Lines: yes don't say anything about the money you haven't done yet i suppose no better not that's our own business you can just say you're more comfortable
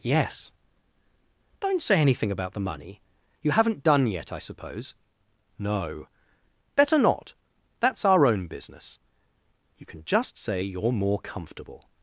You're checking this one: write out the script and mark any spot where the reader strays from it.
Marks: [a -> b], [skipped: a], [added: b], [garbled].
yes don't say anything about the money you haven't done yet i suppose no better not that's our own business you can just say you're more comfortable